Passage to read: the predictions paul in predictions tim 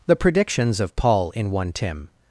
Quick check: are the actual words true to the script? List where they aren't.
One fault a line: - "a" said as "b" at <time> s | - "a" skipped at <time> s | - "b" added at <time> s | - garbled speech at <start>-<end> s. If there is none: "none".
- "of" added at 0.8 s
- "predictions" said as "one" at 1.5 s